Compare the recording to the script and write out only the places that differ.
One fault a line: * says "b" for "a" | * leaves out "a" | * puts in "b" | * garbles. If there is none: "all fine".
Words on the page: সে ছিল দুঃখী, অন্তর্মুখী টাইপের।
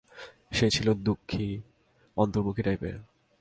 all fine